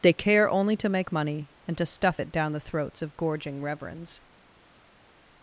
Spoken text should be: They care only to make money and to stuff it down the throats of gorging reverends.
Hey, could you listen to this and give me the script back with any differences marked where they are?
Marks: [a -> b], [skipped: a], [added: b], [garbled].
They care only to make money and to stuff it down the throats of gorging reverends.